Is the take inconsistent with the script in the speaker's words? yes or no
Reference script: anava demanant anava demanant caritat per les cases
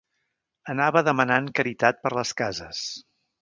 yes